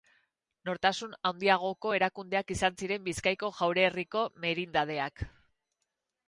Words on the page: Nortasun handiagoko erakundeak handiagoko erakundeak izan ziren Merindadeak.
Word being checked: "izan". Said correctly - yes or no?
no